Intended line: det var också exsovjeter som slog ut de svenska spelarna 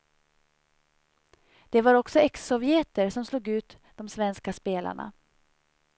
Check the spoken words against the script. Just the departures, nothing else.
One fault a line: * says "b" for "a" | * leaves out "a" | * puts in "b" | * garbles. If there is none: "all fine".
all fine